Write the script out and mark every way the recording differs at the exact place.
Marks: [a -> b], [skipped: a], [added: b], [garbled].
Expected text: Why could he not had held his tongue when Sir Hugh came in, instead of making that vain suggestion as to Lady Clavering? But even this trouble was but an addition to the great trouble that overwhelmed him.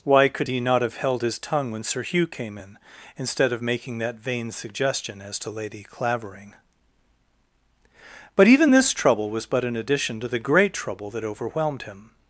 Why could he not [had -> have] held his tongue when Sir Hugh came in, instead of making that vain suggestion as to Lady Clavering? But even this trouble was but an addition to the great trouble that overwhelmed him.